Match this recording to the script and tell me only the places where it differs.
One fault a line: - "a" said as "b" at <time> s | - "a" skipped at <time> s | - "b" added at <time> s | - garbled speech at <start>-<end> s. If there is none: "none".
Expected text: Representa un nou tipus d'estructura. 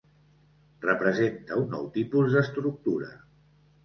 none